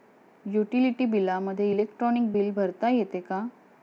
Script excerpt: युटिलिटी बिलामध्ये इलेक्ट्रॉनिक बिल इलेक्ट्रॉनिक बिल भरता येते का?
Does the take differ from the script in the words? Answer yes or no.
yes